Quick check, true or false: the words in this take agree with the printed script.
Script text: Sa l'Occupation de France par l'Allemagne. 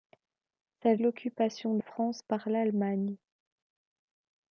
true